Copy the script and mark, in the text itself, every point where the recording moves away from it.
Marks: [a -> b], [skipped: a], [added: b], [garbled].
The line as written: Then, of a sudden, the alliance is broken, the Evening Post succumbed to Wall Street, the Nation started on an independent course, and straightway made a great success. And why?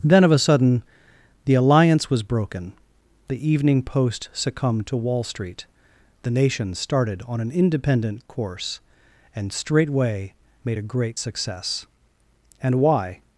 Then, of a sudden, the alliance [is -> was] broken, the Evening Post succumbed to Wall Street, the Nation started on an independent course, and straightway made a great success. And why?